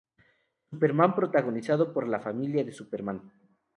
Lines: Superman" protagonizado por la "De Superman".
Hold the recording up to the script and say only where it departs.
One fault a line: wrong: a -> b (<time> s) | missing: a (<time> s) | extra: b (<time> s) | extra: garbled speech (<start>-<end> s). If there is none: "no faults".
extra: Familia (2.2 s)